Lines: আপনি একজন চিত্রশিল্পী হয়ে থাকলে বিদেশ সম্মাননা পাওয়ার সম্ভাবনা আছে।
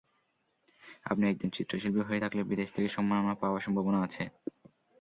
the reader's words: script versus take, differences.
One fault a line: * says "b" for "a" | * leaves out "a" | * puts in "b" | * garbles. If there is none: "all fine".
* puts in "থেকে"